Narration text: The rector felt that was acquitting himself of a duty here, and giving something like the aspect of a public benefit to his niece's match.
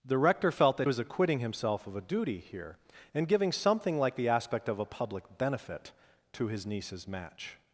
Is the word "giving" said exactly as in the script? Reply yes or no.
yes